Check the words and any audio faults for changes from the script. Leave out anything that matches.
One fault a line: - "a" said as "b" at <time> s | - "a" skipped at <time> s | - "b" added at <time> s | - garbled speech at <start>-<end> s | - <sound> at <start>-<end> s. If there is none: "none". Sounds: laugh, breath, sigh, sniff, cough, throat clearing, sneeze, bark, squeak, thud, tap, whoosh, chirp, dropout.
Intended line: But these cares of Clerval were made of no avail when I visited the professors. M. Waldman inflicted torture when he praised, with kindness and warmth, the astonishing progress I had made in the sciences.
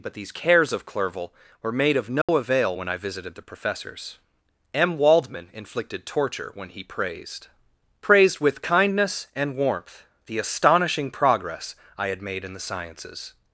- dropout at 2.2-2.3 s
- "praised" added at 8.0 s